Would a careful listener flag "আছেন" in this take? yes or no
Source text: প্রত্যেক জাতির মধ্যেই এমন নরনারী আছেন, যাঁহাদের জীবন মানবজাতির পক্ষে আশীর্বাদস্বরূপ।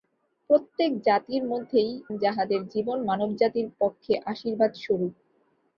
yes